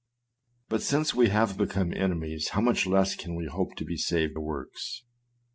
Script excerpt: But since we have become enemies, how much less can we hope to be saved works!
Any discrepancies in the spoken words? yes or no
no